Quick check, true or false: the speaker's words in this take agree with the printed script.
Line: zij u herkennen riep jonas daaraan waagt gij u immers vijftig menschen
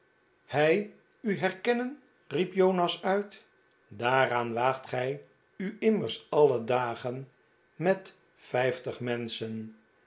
false